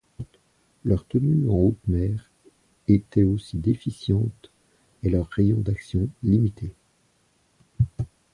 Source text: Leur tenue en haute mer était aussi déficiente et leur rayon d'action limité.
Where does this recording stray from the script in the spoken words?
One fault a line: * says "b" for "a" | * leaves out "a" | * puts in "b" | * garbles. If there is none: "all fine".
all fine